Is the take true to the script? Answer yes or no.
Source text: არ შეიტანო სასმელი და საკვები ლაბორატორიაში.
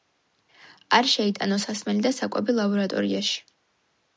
yes